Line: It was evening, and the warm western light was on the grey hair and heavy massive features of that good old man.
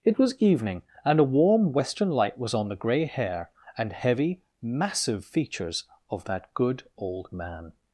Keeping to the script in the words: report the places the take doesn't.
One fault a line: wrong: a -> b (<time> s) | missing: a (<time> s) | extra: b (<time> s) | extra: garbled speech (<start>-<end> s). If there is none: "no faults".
wrong: the -> a (1.2 s)